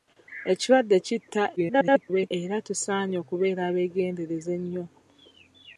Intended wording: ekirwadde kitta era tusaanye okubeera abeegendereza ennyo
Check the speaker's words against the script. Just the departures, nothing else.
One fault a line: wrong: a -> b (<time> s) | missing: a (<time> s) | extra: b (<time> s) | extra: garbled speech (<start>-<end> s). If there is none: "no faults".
extra: garbled speech (1.6-2.3 s)